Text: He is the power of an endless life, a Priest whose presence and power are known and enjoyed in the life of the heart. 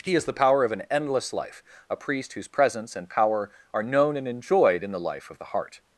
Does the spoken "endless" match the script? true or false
true